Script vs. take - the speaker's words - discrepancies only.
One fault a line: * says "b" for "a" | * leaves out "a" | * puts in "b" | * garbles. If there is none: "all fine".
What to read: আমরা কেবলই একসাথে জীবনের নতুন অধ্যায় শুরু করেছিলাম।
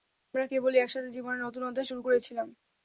all fine